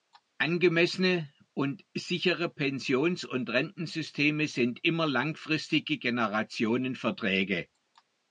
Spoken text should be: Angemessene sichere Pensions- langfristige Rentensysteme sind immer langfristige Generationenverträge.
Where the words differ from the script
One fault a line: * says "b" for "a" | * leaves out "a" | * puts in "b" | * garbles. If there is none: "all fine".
* puts in "und"
* says "und" for "langfristige"